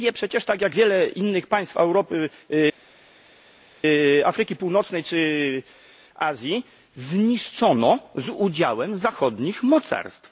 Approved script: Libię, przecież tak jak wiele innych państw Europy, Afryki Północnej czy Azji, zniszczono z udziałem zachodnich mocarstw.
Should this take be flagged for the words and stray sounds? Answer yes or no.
no